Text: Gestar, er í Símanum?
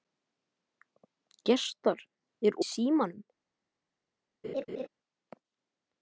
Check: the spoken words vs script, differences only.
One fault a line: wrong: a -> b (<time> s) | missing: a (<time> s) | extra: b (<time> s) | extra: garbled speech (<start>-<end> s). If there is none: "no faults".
no faults